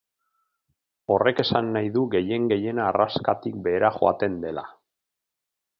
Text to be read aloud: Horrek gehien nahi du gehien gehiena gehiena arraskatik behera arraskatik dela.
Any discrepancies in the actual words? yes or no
yes